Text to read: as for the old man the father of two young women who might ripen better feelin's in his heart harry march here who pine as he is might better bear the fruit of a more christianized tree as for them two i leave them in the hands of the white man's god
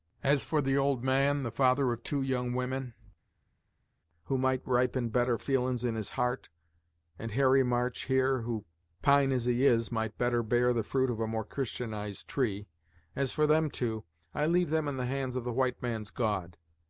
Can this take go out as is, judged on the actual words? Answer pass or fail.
fail